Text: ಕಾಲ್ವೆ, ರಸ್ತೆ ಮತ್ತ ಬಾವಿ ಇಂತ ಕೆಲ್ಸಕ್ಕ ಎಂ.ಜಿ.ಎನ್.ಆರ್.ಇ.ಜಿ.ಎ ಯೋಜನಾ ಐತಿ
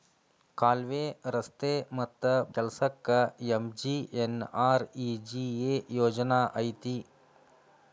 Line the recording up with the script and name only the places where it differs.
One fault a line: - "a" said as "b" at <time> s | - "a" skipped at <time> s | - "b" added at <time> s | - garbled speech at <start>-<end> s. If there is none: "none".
- "ಬಾವಿ ಇಂತ" skipped at 2.2 s